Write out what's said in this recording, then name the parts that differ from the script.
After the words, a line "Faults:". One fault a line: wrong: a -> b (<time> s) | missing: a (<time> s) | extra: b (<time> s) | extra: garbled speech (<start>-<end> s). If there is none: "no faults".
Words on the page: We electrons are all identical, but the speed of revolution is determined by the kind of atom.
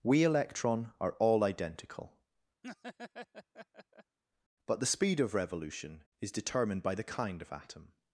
We electron are all identical, but the speed of revolution is determined by the kind of atom.
Faults:
wrong: electrons -> electron (0.2 s)